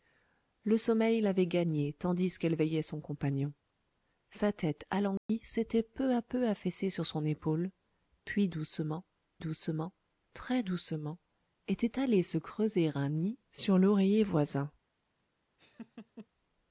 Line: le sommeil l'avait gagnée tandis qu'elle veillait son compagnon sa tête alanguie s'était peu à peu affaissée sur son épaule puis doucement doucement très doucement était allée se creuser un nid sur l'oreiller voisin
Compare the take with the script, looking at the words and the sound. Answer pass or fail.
fail